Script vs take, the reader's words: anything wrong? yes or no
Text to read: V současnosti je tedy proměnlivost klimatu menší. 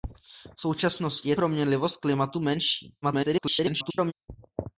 yes